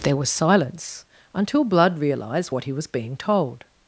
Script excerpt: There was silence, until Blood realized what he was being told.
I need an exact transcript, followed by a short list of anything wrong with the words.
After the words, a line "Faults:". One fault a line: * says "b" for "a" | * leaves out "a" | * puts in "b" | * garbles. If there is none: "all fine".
There was silence, until Blood realized what he was being told.
Faults:
all fine